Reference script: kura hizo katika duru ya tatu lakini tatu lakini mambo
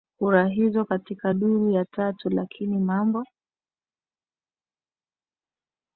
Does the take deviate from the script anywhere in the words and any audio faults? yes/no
yes